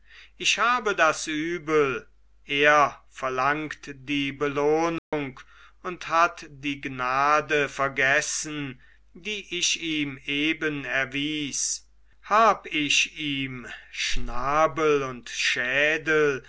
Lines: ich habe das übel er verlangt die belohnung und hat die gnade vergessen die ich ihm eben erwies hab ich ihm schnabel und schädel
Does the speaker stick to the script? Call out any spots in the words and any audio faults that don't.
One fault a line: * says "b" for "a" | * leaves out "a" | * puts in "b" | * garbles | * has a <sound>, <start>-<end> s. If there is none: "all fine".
* has a dropout, 5.0-5.1 s